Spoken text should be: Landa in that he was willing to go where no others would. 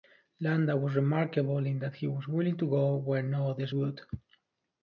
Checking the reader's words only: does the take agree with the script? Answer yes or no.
no